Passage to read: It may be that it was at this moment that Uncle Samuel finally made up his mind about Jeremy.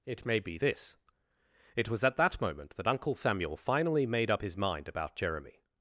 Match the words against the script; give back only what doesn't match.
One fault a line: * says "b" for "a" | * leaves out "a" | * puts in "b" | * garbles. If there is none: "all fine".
* says "this" for "that"
* says "that" for "this"